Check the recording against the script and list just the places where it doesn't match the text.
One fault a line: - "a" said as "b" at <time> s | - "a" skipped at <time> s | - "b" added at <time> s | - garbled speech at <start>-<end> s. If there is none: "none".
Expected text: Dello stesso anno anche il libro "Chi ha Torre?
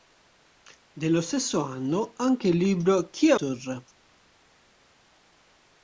none